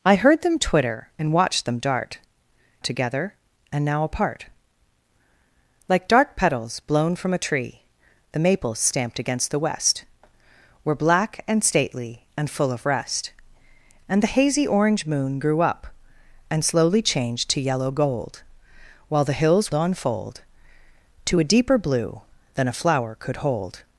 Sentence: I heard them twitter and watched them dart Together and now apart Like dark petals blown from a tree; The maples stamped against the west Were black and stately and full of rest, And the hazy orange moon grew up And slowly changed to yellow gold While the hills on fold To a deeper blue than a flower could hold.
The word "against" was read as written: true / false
true